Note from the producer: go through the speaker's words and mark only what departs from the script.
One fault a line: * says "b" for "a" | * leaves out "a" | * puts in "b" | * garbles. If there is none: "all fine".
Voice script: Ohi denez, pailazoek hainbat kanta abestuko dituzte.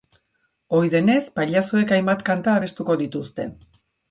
all fine